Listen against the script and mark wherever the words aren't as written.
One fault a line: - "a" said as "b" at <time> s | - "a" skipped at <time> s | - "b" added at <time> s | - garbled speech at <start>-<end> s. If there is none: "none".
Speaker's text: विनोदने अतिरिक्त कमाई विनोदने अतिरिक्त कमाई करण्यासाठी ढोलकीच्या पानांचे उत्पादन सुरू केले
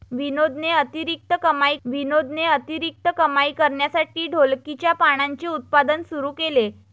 none